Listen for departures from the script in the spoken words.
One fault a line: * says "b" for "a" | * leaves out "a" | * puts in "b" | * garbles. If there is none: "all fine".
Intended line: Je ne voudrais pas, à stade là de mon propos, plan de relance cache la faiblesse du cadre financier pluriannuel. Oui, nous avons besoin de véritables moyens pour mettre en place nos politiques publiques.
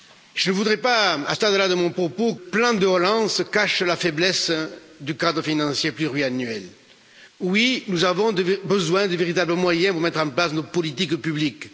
all fine